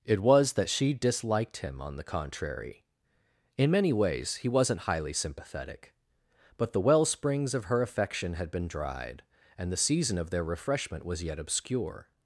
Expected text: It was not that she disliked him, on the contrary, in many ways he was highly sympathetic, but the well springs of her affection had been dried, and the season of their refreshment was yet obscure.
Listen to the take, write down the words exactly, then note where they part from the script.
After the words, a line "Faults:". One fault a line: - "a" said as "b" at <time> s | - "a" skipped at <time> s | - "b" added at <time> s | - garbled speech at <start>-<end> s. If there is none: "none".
It was that she disliked him, on the contrary, in many ways he wasn't highly sympathetic, but the well springs of her affection had been dried, and the season of their refreshment was yet obscure.
Faults:
- "not" skipped at 0.5 s
- "was" said as "wasn't" at 4.5 s